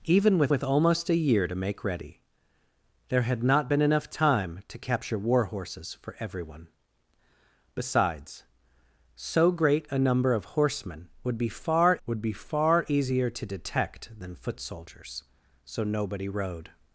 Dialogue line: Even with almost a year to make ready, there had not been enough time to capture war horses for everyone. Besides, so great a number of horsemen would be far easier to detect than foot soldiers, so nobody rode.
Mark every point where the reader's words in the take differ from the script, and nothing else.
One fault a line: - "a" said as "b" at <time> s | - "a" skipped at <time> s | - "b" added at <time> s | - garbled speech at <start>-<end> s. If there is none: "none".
- "with" added at 0.5 s
- "would be far" added at 12.1 s